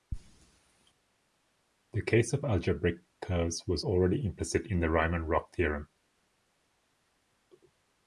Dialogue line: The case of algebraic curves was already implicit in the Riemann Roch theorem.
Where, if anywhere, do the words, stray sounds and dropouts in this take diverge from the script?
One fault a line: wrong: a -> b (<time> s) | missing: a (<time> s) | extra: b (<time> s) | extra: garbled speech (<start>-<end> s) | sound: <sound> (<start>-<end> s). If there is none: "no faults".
no faults